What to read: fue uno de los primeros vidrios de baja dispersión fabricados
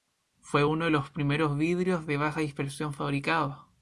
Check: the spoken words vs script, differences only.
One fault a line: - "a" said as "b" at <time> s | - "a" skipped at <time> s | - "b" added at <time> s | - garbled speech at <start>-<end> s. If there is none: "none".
none